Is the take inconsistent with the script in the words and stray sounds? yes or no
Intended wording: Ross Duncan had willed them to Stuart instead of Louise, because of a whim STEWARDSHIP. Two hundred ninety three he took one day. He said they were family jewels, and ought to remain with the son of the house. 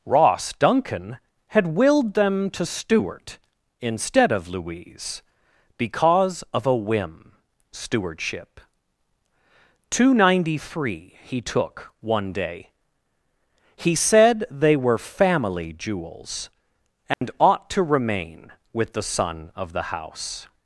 yes